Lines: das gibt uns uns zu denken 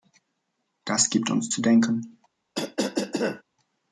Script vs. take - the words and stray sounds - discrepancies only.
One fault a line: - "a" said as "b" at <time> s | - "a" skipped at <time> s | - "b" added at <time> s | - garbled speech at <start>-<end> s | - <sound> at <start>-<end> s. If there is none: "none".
- "uns" skipped at 1.5 s
- cough at 2.5-3.4 s